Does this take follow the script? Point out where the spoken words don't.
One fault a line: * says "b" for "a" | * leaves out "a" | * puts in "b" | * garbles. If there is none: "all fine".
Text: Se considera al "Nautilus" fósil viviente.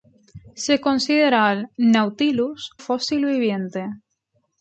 all fine